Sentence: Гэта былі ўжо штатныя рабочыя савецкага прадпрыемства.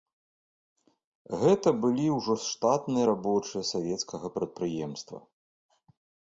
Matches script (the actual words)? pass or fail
pass